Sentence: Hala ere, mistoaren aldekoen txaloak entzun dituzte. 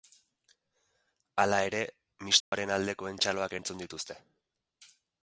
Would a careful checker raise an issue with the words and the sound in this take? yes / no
yes